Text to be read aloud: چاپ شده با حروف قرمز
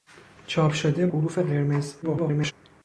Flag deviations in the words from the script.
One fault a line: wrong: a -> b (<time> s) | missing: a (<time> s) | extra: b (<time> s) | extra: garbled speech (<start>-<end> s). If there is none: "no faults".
missing: با (1.1 s)
extra: garbled speech (2.0-2.5 s)